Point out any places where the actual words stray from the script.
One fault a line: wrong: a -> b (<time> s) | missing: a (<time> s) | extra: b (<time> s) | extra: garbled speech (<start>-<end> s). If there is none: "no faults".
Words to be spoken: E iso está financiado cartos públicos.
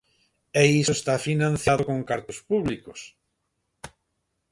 extra: con (1.9 s)